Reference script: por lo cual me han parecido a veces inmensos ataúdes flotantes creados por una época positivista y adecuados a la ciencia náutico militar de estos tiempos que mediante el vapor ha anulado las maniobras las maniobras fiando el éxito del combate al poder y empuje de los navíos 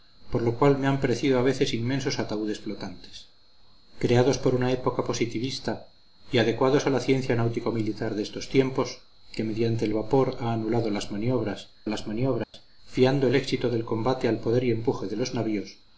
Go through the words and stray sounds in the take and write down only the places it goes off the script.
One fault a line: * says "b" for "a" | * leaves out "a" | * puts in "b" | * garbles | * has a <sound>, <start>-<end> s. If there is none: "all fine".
* has a dropout, 12.4-12.5 s